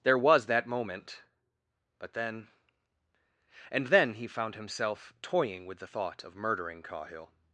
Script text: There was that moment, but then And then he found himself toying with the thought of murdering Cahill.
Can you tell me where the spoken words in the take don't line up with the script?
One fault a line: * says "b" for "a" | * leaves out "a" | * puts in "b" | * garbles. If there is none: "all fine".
all fine